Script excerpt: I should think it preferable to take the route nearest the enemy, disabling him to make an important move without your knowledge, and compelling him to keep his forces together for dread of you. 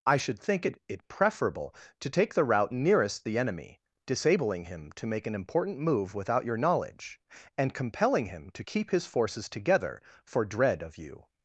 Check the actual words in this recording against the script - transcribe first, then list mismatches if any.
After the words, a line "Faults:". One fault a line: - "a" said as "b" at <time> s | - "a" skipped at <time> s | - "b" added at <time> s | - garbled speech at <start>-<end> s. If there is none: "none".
I should think it it preferable to take the route nearest the enemy, disabling him to make an important move without your knowledge, and compelling him to keep his forces together for dread of you.
Faults:
- "it" added at 0.9 s